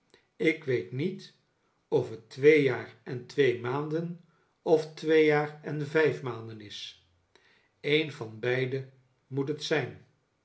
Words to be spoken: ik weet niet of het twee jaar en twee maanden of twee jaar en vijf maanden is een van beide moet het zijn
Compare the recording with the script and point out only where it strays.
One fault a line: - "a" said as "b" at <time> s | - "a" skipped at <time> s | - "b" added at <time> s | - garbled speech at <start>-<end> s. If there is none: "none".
none